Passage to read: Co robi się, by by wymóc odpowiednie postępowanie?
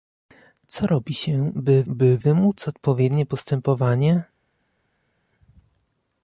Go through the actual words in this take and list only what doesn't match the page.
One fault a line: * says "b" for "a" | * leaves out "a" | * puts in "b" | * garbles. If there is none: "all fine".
all fine